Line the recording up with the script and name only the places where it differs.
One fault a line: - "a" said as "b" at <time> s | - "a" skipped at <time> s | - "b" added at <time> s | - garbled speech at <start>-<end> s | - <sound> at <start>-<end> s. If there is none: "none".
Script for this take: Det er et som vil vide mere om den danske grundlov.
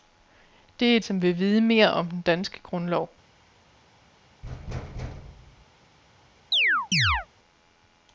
- thud at 4.4-5.7 s
- chirp at 6.5-7.3 s